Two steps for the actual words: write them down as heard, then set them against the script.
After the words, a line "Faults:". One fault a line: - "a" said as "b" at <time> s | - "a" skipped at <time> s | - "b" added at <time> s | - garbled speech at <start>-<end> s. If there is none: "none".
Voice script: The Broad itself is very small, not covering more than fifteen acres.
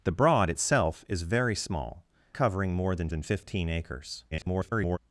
The Broad itself is very small, covering more than than fifteen acres. [garbled]
Faults:
- "not" skipped at 2.0 s
- "than" added at 3.1 s
- garbled speech at 4.3-5.0 s